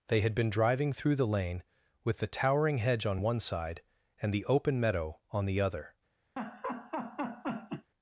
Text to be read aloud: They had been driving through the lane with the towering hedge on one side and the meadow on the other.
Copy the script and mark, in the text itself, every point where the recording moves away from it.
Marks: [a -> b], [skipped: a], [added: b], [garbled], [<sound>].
They had been driving through the lane with the towering hedge on one side and the [added: open] meadow on the other. [laugh]